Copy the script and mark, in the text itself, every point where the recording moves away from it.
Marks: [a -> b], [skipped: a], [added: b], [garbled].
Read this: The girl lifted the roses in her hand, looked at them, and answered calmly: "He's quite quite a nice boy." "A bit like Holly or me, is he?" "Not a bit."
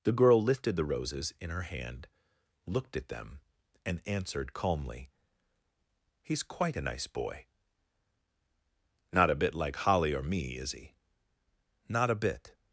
The girl lifted the roses in her hand, looked at them, and answered calmly: "He's quite [skipped: quite] a nice boy." [added: Not] "A bit like Holly or me, is he?" "Not a bit."